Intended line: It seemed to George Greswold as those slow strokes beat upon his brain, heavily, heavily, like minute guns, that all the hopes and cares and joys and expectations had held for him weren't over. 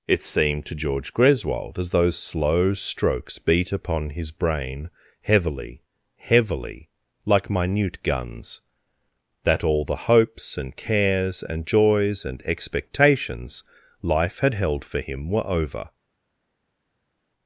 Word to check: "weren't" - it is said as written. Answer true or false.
false